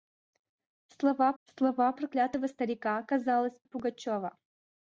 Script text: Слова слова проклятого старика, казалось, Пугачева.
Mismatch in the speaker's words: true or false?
false